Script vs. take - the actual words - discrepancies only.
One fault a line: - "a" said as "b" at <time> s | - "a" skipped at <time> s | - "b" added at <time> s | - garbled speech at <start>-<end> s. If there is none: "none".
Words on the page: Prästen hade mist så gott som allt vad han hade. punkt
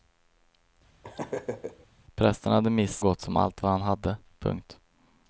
- "så" skipped at 3.0 s